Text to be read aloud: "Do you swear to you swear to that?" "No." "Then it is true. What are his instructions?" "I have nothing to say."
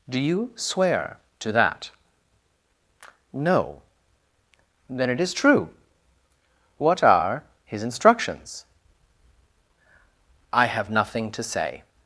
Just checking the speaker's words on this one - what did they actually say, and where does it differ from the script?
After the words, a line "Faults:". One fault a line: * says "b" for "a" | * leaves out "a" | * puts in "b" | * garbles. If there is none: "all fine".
"Do you swear to that?" "No." "Then it is true. What are his instructions?" "I have nothing to say."
Faults:
* leaves out "you swear to"